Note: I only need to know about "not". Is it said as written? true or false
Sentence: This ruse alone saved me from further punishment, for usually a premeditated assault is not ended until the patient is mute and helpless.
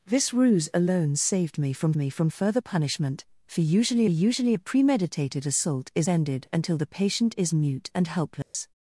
false